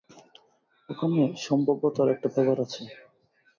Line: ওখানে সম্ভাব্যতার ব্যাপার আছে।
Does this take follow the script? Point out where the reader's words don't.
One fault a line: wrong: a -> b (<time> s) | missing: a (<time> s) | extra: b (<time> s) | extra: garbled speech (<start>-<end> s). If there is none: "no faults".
extra: একটা (2.1 s)